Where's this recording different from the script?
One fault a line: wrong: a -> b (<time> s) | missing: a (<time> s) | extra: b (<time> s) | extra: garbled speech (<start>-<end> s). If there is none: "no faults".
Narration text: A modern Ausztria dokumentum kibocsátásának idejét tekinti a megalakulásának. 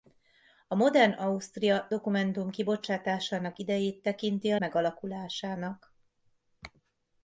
no faults